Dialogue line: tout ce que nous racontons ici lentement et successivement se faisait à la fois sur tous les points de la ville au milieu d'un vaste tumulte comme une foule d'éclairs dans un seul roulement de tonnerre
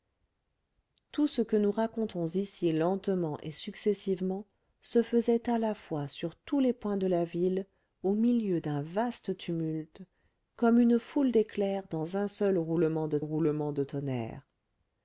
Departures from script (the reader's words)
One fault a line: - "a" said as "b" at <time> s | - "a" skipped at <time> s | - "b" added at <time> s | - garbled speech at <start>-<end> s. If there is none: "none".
- "roulement de" added at 13.2 s